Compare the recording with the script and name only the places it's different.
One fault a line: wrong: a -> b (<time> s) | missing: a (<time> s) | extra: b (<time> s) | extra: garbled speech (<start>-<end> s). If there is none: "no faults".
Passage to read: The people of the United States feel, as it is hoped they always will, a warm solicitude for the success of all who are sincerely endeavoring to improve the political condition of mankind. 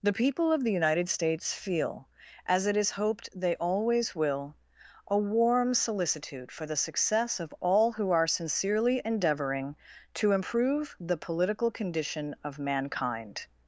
no faults